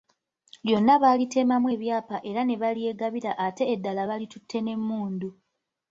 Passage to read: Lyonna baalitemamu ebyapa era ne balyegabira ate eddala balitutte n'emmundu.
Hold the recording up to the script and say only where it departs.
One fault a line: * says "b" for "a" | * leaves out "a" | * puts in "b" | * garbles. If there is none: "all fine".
all fine